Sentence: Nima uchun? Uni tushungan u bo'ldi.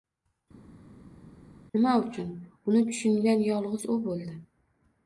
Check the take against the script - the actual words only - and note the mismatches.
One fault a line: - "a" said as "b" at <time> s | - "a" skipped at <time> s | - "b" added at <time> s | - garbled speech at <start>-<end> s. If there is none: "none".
- "yolg'iz" added at 3.5 s